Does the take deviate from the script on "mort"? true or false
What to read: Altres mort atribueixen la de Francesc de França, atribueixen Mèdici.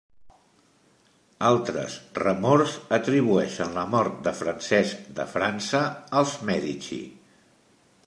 true